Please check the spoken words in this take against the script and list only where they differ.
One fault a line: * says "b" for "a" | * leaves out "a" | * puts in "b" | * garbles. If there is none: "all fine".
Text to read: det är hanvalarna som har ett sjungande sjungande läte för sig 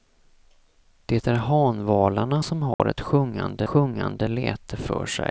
all fine